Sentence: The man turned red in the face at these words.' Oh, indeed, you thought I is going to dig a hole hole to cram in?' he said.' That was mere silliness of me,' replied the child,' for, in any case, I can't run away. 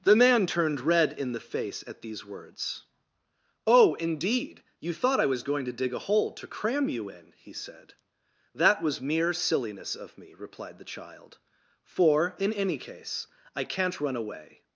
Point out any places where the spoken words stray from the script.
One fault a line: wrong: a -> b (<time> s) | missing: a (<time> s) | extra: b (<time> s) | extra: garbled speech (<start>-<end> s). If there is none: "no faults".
wrong: is -> was (5.3 s)
missing: hole (6.3 s)
extra: you (6.9 s)